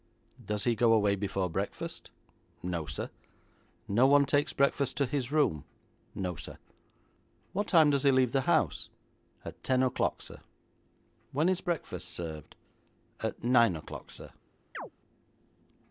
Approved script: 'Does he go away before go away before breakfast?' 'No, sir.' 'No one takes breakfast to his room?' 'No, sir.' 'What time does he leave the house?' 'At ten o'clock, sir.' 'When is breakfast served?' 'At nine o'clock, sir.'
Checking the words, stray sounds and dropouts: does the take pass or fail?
fail